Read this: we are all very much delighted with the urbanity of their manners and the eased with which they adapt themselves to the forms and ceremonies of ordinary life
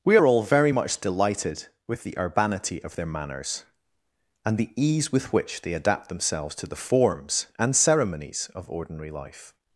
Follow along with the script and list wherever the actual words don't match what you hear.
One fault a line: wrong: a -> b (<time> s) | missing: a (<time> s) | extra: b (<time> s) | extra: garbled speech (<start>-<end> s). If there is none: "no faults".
wrong: eased -> ease (4.8 s)